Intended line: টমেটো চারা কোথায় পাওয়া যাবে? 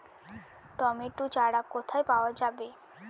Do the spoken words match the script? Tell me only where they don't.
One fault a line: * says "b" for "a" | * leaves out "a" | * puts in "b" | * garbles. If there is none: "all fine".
all fine